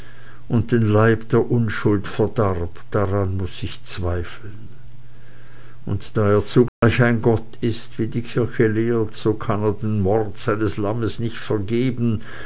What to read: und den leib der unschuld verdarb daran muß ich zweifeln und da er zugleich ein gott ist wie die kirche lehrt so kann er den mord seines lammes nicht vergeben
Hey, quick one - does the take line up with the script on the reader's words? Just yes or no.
yes